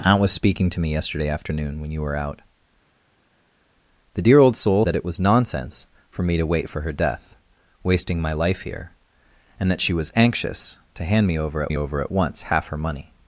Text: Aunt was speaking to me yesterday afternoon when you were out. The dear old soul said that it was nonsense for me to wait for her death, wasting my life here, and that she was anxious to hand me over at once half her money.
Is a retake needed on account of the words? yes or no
yes